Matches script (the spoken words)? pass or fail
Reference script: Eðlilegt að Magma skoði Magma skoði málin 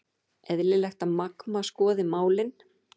fail